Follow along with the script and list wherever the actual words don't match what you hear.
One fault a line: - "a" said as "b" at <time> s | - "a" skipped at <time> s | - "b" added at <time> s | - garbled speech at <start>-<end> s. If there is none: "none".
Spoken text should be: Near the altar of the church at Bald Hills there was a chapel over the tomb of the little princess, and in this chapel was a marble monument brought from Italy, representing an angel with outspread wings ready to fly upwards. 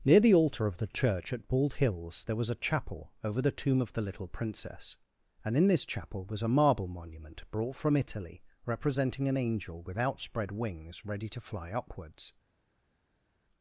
none